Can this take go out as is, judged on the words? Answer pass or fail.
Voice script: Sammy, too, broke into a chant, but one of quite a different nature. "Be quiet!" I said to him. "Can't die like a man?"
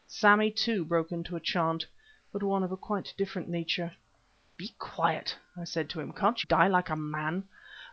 pass